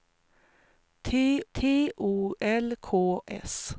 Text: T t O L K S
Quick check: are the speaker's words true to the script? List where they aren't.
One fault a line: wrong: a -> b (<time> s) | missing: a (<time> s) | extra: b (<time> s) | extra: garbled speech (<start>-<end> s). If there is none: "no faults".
no faults